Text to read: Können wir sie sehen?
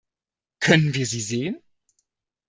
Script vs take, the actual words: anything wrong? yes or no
no